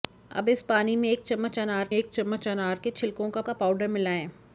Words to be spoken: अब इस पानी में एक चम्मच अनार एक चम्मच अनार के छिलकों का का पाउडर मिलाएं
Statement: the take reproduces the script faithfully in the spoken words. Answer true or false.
true